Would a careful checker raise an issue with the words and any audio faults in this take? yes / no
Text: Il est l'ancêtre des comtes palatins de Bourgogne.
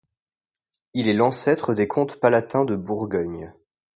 no